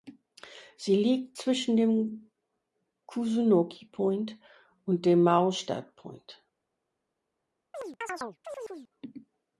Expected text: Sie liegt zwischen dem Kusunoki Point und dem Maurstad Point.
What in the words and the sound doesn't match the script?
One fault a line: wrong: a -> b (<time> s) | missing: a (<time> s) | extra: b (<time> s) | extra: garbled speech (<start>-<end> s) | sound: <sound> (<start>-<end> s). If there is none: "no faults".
sound: chirp (7.7-8.9 s)